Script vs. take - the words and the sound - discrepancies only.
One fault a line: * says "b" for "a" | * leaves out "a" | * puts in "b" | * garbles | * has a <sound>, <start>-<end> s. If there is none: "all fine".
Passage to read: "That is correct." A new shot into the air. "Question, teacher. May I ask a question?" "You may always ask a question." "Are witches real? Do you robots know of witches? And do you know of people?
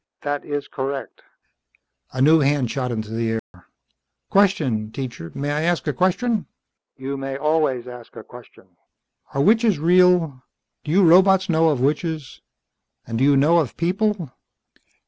* puts in "hand"
* has a dropout, 3.4-3.5 s